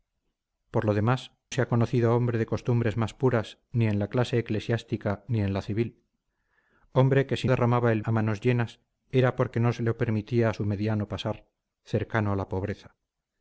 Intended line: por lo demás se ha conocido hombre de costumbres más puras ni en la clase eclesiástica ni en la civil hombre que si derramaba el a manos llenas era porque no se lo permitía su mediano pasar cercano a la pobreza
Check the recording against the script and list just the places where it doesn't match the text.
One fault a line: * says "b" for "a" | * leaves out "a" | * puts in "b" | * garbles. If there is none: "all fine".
all fine